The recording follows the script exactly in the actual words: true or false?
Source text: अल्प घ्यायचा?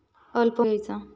true